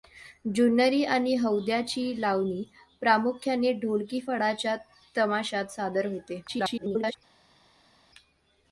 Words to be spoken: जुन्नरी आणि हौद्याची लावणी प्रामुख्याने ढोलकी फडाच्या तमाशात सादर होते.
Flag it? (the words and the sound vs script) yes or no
yes